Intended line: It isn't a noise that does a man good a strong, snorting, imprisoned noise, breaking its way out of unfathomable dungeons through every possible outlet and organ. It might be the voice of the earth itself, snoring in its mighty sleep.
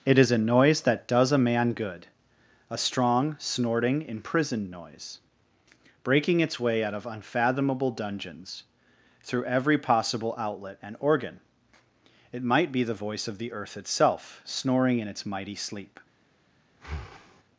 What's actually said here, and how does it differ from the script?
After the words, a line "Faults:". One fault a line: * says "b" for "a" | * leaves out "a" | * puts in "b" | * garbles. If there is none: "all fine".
It is a noise that does a man good a strong, snorting, imprisoned noise, breaking its way out of unfathomable dungeons through every possible outlet and organ. It might be the voice of the earth itself, snoring in its mighty sleep.
Faults:
* says "is" for "isn't"